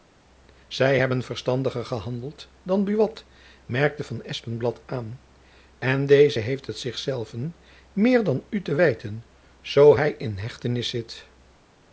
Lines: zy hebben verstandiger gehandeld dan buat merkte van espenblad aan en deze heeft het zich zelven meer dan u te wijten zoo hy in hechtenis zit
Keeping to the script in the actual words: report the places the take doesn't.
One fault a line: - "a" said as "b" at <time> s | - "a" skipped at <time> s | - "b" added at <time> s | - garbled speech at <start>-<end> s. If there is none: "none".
none